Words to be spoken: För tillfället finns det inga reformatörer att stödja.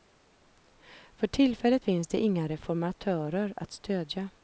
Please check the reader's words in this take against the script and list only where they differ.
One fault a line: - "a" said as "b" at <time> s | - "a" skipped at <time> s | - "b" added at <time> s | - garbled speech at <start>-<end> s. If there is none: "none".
none